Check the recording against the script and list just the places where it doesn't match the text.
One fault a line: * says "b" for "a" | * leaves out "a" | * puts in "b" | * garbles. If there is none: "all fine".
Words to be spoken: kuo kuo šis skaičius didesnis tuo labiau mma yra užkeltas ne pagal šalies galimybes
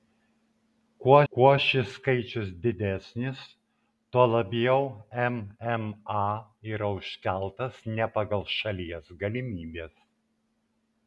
all fine